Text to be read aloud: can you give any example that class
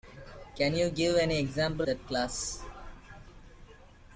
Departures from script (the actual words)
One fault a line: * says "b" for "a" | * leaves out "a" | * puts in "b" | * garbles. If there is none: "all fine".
all fine